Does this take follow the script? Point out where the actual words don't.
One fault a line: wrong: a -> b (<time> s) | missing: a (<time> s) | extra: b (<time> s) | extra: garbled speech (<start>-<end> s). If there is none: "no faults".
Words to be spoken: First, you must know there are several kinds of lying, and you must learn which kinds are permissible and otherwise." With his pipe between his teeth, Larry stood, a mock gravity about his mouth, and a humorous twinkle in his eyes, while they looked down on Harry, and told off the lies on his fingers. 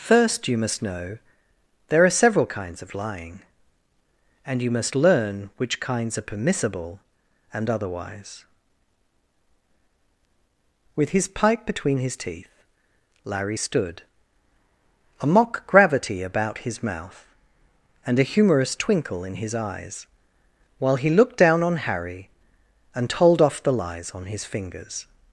wrong: they -> he (20.9 s)